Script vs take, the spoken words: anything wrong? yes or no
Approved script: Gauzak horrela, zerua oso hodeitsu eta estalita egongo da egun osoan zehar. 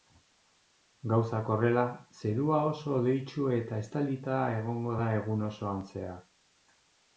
no